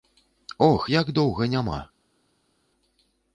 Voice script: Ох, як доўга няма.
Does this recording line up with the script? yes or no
yes